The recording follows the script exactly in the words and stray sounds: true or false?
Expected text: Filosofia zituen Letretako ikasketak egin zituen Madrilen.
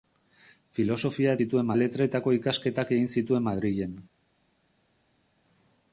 true